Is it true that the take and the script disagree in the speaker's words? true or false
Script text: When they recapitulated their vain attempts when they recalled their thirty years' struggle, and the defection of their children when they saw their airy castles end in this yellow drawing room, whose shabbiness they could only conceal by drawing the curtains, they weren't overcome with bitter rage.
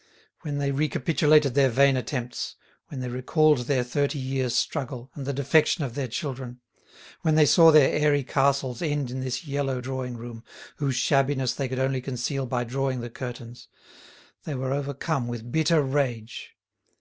true